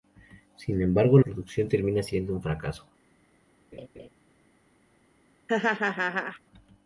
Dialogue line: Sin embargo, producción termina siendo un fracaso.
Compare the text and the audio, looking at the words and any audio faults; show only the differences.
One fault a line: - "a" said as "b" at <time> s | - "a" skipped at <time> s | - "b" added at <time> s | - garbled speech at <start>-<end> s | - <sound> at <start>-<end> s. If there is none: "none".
- laugh at 3.7-4.1 s
- laugh at 5.5-6.4 s